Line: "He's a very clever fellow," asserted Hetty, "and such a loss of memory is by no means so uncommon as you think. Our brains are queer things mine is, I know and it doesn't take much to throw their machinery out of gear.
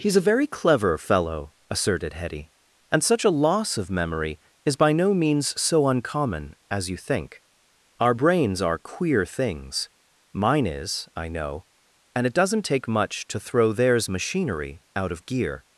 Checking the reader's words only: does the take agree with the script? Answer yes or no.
no